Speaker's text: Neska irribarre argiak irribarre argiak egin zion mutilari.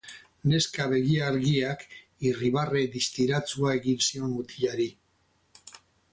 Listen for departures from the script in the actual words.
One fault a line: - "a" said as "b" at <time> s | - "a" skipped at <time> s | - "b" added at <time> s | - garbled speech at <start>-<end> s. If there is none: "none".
- "irribarre" said as "begi" at 0.9 s
- "argiak" said as "distiratsua" at 3.0 s